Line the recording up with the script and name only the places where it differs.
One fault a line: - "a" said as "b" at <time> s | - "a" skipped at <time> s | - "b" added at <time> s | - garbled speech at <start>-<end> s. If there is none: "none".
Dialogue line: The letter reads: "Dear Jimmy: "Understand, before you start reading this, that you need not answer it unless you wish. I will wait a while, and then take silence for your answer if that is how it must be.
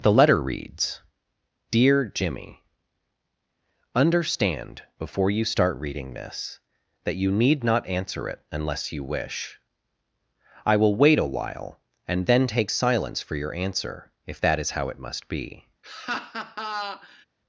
none